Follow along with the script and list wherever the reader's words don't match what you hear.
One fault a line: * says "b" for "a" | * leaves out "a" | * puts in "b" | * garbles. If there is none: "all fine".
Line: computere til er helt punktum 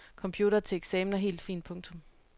* puts in "eksamen"
* puts in "fint"